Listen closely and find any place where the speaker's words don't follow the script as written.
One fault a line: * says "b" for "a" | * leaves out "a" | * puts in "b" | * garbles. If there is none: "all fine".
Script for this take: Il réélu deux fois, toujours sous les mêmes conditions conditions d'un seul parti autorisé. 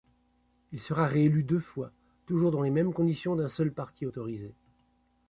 * puts in "sera"
* says "dans" for "sous"
* leaves out "conditions"